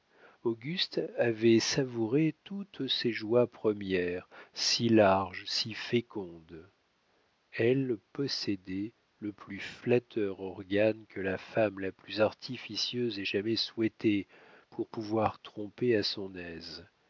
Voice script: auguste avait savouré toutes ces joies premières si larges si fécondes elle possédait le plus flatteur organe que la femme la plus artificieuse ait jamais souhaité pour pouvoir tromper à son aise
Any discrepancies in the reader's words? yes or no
no